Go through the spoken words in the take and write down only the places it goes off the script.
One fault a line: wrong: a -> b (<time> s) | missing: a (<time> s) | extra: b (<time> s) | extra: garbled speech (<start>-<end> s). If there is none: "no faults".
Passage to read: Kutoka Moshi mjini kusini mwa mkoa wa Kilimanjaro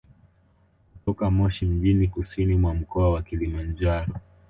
no faults